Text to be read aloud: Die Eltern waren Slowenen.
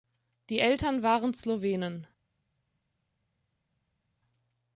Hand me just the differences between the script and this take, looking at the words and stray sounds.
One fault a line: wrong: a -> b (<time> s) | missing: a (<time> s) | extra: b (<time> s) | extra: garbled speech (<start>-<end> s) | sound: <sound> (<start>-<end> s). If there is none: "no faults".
no faults